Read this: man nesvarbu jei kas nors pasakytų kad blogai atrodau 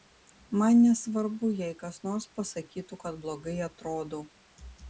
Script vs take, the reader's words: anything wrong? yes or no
no